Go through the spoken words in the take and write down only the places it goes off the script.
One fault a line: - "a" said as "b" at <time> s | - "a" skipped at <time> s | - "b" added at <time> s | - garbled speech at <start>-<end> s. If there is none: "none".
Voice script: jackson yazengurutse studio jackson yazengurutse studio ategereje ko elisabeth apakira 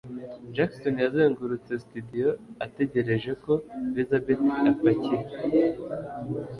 - "jackson yazengurutse studio" skipped at 2.3 s